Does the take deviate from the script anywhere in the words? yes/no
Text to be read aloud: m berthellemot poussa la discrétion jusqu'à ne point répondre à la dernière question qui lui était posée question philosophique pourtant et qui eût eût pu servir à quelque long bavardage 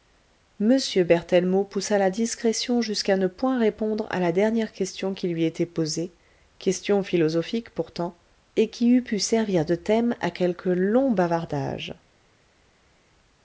yes